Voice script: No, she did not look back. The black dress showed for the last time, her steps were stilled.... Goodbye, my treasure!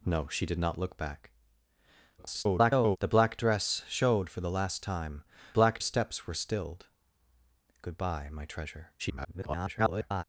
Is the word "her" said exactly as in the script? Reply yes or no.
no